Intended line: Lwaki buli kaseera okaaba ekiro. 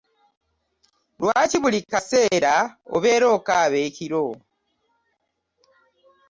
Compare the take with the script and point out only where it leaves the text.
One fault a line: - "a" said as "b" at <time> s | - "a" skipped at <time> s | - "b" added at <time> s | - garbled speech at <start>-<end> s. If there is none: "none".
- "obeera" added at 3.0 s